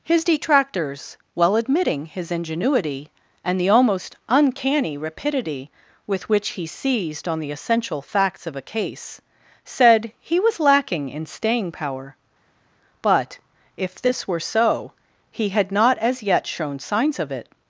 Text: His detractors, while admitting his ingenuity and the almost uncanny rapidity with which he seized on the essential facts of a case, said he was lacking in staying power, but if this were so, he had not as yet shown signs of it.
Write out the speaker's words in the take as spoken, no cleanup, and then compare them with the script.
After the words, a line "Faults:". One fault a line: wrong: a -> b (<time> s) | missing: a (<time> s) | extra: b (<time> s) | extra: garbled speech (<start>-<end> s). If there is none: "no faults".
His detractors, while admitting his ingenuity and the almost uncanny rapidity with which he seized on the essential facts of a case, said he was lacking in staying power, but if this were so, he had not as yet shown signs of it.
Faults:
no faults